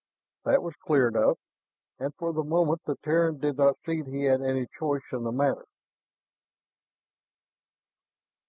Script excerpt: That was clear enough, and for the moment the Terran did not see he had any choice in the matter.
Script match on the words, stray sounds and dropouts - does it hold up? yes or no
yes